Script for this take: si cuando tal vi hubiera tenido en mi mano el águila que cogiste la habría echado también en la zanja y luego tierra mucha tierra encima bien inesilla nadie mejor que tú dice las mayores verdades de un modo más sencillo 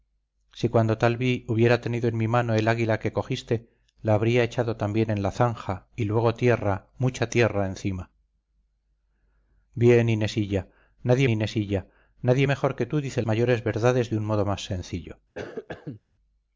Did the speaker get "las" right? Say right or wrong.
wrong